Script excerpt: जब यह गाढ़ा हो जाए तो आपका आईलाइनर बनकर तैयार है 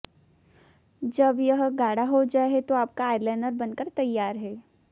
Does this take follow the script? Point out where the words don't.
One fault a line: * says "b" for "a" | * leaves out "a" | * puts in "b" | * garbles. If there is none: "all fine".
all fine